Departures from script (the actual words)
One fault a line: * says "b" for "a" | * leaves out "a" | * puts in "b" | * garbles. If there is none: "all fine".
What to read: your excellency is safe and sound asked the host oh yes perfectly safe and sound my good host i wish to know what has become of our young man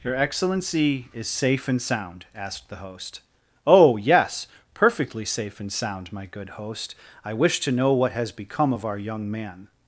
all fine